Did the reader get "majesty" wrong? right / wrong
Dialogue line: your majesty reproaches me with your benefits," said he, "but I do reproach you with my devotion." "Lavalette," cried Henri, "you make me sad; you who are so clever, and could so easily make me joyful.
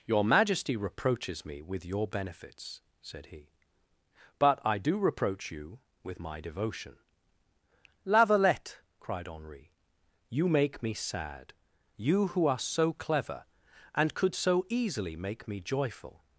right